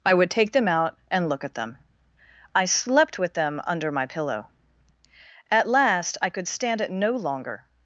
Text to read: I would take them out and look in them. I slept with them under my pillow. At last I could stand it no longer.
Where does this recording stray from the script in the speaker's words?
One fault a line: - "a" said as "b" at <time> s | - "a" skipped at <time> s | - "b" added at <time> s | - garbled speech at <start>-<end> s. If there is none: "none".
- "in" said as "at" at 1.4 s